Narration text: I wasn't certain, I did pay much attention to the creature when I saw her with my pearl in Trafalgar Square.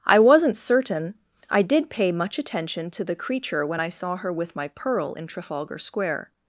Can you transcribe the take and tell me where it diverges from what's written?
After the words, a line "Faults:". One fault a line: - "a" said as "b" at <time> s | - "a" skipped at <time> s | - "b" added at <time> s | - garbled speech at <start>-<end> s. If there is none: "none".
I wasn't certain, I did pay much attention to the creature when I saw her with my pearl in Trafalgar Square.
Faults:
none